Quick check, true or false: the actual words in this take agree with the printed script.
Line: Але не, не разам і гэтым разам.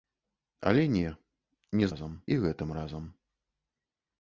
true